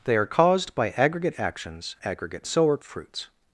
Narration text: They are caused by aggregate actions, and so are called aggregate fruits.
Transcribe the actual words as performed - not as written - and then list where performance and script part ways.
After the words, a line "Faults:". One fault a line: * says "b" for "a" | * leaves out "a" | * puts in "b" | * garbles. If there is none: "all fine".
They are caused by aggregate actions, aggregate so are fruits.
Faults:
* says "aggregate" for "and"
* leaves out "called aggregate"